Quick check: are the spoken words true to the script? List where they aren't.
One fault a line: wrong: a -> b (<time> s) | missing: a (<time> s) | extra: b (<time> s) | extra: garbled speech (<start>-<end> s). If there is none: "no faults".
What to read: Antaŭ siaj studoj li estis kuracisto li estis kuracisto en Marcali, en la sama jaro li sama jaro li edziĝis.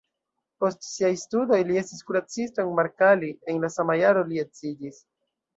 wrong: Antaŭ -> Post (0.6 s)
missing: li estis kuracisto (2.6 s)
missing: sama jaro li (4.5 s)